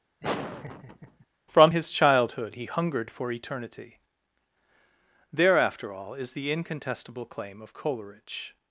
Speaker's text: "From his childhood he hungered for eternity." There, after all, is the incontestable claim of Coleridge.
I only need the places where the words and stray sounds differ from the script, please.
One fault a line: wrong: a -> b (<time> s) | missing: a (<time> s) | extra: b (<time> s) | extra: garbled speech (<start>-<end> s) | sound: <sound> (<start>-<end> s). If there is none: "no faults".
sound: laugh (0.2-1.3 s)